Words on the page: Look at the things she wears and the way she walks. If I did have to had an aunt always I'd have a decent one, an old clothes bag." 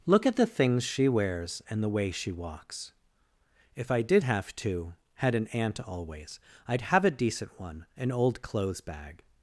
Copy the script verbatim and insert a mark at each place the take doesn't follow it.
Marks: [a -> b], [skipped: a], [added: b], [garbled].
Look at the things she wears and the way she walks. If I did have to had an aunt always I'd have a decent one, an old clothes bag."